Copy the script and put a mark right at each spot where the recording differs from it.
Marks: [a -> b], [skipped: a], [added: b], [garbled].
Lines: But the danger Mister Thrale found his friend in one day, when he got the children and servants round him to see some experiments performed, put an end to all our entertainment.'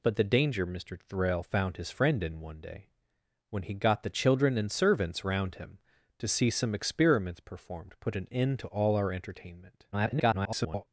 But the danger Mister Thrale found his friend in one day, when he got the children and servants round him to see some experiments performed, put an end to all our entertainment.' [garbled]